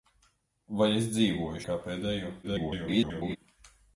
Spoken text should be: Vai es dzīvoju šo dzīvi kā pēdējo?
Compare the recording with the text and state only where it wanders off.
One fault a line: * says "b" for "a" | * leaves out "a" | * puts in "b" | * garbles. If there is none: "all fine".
* leaves out "šo dzīvi"
* garbles